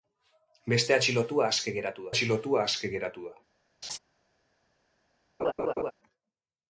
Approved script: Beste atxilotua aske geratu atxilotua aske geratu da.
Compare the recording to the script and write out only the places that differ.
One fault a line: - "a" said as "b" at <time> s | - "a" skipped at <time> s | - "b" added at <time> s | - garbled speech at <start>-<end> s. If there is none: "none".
none